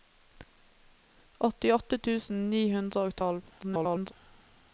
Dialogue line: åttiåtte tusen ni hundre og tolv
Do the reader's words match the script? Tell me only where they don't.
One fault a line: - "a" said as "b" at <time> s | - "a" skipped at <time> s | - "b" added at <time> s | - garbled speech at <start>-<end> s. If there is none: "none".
- garbled speech at 3.6-4.1 s